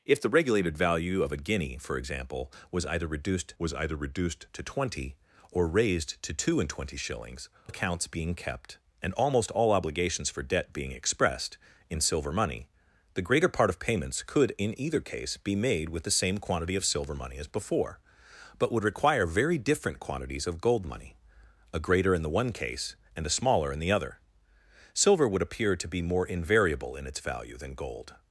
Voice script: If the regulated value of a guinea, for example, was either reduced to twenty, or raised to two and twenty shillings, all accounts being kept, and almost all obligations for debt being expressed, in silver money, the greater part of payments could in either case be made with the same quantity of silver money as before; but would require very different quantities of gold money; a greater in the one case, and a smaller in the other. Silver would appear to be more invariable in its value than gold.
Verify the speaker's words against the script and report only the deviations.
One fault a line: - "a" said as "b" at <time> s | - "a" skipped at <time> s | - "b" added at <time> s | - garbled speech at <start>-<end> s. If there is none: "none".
- "was either reduced" added at 3.6 s
- "all" skipped at 7.5 s